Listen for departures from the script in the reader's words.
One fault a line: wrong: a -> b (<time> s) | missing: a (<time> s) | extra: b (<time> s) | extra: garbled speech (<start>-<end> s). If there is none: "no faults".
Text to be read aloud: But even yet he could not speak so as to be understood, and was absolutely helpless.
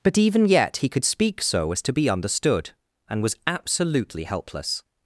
missing: not (1.1 s)